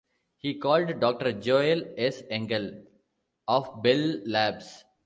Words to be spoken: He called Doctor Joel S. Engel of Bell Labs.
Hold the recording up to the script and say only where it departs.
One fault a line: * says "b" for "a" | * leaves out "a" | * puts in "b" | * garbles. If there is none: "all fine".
all fine